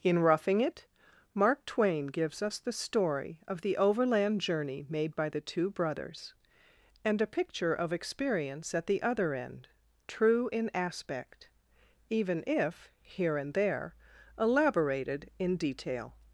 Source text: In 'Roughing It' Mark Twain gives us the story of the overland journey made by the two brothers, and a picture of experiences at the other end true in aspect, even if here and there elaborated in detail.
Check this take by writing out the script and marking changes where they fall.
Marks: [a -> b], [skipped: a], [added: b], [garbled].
In 'Roughing It' Mark Twain gives us the story of the overland journey made by the two brothers, and a picture of [experiences -> experience] at the other end true in aspect, even if here and there elaborated in detail.